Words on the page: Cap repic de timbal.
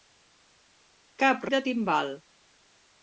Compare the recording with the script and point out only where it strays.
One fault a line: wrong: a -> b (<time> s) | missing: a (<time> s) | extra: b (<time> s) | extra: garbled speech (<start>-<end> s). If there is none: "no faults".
missing: repic (1.5 s)